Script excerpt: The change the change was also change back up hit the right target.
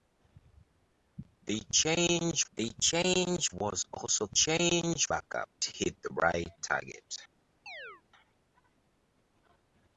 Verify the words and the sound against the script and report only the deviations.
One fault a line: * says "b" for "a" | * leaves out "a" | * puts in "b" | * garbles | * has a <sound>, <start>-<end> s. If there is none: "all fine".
* has a chirp, 7.7-8.0 s